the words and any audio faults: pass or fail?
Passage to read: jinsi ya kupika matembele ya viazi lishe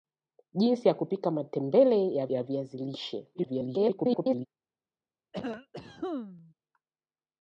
fail